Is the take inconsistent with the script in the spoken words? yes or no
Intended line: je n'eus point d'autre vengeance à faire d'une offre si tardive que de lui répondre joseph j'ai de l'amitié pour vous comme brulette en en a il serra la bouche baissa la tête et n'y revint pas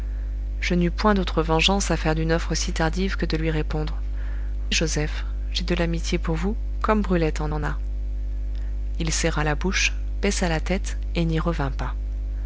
no